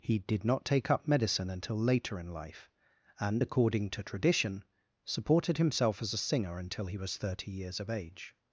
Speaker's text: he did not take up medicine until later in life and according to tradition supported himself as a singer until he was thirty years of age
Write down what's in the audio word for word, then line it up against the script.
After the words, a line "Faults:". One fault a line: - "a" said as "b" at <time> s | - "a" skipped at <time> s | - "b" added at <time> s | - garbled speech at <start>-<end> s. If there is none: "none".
he did not take up medicine until later in life and according to tradition supported himself as a singer until he was thirty years of age
Faults:
none